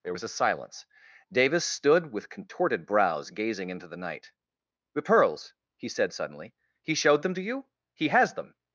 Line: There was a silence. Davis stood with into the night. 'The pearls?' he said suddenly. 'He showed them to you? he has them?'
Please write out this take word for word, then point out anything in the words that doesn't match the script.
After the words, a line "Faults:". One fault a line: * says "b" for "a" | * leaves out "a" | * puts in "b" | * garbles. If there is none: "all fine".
There was a silence. Davis stood with contorted brows, gazing into the night. 'The pearls?' he said suddenly. 'He showed them to you? he has them?'
Faults:
* puts in "contorted brows gazing"